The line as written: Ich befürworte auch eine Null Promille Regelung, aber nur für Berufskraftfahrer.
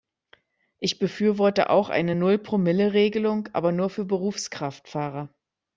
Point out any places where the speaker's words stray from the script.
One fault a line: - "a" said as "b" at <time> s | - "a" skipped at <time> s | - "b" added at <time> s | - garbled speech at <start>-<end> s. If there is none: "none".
none